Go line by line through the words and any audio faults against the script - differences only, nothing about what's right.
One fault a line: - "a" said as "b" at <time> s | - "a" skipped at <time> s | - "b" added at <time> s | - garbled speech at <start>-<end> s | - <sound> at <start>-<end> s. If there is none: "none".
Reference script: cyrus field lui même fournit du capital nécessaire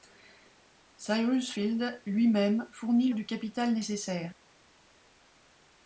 none